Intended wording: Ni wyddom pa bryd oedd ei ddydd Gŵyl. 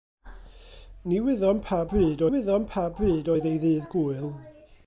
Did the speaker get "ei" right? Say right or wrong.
right